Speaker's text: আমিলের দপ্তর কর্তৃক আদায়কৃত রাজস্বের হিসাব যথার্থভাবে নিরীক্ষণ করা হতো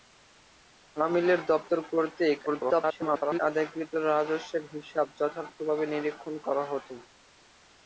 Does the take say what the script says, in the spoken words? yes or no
no